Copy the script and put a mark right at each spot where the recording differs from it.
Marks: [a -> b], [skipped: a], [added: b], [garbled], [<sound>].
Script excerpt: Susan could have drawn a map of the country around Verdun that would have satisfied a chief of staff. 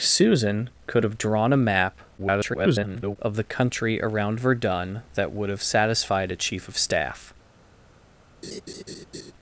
Susan could have drawn a map [garbled] of the country around Verdun that would have satisfied a chief of staff. [laugh]